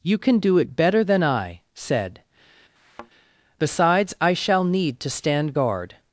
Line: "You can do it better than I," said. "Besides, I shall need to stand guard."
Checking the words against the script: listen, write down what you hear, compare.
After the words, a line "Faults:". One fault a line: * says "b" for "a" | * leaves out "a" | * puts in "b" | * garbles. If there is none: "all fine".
"You can do it better than I," said. "Besides, I shall need to stand guard."
Faults:
all fine